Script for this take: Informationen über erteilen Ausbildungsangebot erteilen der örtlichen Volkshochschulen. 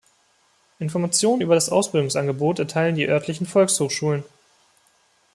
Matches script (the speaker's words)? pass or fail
fail